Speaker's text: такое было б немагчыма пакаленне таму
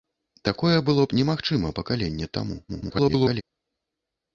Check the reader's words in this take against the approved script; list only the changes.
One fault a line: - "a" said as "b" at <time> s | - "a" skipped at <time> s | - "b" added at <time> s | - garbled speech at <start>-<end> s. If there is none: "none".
- garbled speech at 2.7-3.4 s